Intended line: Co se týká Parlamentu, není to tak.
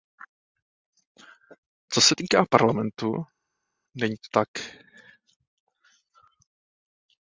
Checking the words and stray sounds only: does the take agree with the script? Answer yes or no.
yes